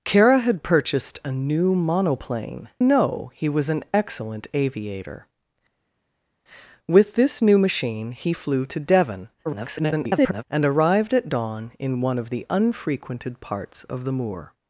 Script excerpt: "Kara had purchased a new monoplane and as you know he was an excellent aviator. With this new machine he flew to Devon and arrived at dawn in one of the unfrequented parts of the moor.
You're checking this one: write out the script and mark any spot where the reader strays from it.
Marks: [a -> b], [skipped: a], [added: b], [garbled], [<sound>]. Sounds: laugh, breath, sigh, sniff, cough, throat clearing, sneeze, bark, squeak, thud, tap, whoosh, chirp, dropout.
"Kara had purchased a new monoplane [skipped: and as you] know he was an excellent aviator. With this new machine he flew to Devon [garbled] and arrived at dawn in one of the unfrequented parts of the moor.